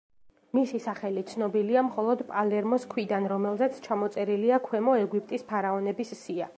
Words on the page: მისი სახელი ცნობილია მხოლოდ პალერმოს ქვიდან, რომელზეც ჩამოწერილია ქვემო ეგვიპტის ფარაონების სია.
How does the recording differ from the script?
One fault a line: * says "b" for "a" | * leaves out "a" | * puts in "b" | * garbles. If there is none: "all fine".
all fine